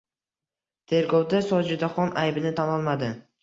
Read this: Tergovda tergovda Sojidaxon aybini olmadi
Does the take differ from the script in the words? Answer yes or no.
yes